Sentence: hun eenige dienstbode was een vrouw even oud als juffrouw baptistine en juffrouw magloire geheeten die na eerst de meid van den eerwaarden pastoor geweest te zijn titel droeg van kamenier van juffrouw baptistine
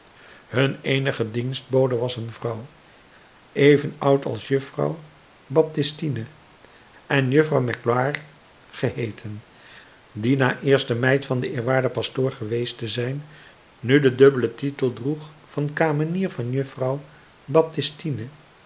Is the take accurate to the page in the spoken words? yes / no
no